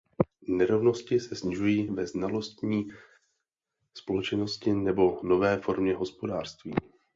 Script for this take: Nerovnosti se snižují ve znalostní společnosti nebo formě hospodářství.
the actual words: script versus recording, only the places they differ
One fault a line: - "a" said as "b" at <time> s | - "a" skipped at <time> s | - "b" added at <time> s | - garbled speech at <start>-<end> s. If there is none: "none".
- "nové" added at 5.2 s